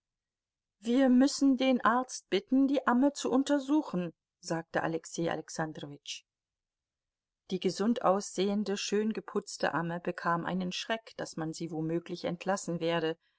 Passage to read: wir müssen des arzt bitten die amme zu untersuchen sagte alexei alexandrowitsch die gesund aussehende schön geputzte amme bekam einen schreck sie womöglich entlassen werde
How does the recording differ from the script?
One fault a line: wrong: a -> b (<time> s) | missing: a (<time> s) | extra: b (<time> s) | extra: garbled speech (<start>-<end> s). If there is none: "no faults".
wrong: des -> den (1.6 s)
extra: daß man (11.2 s)